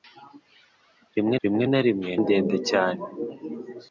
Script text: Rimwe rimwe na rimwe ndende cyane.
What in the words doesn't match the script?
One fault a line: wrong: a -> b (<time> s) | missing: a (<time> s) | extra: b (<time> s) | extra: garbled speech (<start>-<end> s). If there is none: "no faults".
no faults